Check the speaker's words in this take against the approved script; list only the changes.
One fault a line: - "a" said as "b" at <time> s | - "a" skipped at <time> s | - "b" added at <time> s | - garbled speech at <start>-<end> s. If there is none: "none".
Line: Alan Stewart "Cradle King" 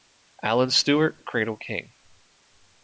none